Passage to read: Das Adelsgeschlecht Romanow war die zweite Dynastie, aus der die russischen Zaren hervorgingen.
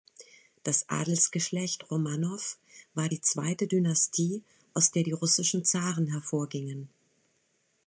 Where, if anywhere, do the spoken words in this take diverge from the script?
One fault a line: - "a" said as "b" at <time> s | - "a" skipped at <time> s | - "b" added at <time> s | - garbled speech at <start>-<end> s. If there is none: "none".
none